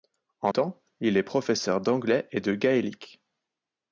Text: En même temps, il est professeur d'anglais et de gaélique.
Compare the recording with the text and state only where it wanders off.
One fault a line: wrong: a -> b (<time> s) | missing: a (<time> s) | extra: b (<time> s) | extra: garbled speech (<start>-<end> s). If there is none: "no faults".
missing: même (0.5 s)